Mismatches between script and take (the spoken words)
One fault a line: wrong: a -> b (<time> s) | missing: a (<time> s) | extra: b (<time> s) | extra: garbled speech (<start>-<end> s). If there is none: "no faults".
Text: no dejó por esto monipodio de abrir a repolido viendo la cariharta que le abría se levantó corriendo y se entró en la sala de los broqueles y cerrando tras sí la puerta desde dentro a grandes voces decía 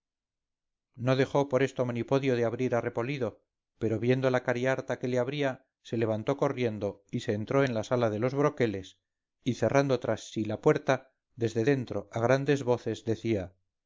extra: pero (3.8 s)